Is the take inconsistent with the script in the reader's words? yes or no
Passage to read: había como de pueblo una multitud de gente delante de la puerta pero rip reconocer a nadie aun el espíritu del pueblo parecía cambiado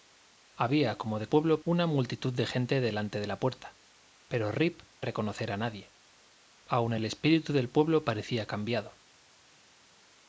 no